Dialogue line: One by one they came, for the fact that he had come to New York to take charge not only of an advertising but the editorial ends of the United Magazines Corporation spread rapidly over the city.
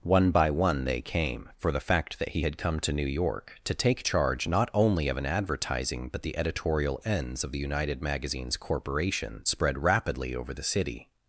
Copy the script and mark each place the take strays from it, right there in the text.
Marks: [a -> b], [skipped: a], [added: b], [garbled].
One by one they came, for the fact that he had come to New York to take charge not only of an advertising but the editorial ends of the United Magazines Corporation spread rapidly over the city.